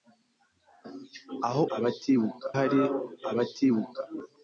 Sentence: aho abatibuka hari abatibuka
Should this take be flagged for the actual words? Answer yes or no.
no